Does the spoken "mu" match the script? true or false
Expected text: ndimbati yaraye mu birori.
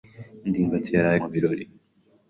true